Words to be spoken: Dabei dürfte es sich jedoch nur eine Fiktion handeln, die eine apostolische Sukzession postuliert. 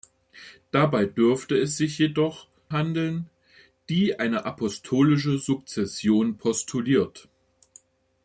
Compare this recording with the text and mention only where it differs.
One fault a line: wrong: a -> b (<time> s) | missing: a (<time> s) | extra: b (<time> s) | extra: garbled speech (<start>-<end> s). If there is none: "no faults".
missing: nur eine Fiktion (2.5 s)